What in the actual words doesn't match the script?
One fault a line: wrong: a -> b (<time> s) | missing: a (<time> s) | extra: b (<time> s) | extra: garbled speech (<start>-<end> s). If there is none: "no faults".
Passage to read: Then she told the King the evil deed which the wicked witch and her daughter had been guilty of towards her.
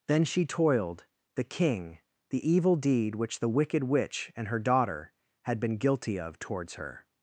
wrong: told -> toiled (0.4 s)